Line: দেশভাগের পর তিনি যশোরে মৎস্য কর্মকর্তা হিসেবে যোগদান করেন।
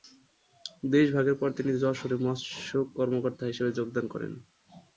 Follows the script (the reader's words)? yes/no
yes